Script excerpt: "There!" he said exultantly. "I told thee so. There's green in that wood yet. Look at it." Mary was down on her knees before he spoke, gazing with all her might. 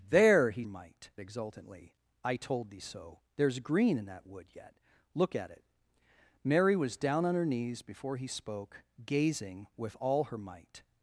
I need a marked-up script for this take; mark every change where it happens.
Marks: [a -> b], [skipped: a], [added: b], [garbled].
"There!" he [said -> might] exultantly. "I told thee so. There's green in that wood yet. Look at it." Mary was down on her knees before he spoke, gazing with all her might.